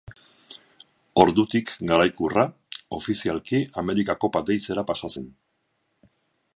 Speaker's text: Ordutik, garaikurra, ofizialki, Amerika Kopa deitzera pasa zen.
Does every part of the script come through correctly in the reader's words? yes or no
yes